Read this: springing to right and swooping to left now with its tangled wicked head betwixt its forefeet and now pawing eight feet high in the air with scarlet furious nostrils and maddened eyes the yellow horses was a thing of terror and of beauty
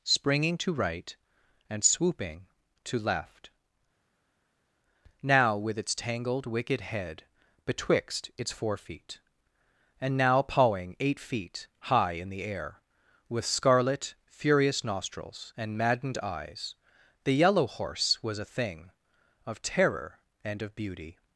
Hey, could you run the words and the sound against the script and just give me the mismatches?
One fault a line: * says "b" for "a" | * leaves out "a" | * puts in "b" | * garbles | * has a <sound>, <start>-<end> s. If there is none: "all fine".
* says "horse" for "horses"